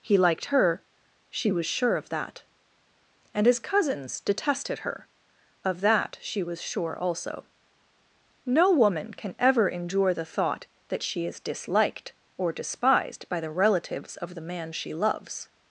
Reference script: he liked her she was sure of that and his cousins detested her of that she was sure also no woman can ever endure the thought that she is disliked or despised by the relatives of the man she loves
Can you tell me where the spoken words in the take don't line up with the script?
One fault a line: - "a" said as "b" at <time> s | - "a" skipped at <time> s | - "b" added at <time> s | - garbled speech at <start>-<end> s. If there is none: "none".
none